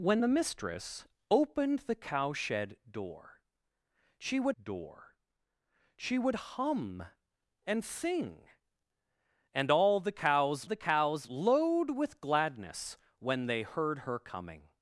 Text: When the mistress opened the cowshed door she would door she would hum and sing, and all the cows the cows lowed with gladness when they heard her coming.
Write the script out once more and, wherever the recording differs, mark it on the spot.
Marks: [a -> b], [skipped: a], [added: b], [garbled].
When the mistress opened the cowshed door she would door she would hum and sing, and all the cows the cows lowed with gladness when they heard her coming.